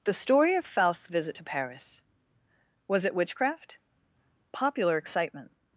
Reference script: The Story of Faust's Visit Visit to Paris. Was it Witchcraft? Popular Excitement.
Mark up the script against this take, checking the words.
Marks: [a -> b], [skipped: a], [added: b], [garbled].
The Story of Faust's Visit [skipped: Visit] to Paris. Was it Witchcraft? Popular Excitement.